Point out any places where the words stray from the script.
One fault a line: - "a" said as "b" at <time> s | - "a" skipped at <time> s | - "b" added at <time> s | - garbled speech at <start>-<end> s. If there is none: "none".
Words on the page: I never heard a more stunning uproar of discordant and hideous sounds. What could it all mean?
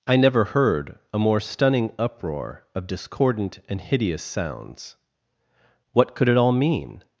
none